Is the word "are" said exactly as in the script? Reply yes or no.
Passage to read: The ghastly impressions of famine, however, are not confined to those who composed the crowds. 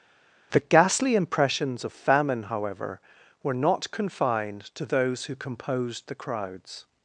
no